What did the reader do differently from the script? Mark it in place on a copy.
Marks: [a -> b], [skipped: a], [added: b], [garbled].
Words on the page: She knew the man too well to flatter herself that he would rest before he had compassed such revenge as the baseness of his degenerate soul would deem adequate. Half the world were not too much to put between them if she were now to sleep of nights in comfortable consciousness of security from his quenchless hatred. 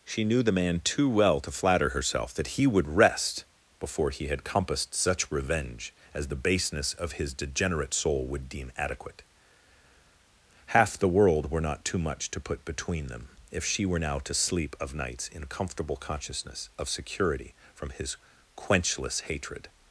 She knew the man too well to flatter herself that he would rest before he had compassed such revenge as the baseness of his degenerate soul would deem adequate. Half the world were not too much to put between them if she were now to sleep of nights in comfortable consciousness of security from his quenchless hatred.